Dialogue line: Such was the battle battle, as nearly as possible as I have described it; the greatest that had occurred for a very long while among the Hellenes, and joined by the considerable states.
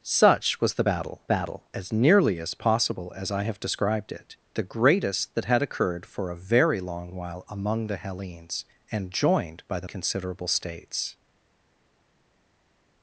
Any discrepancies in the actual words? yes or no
no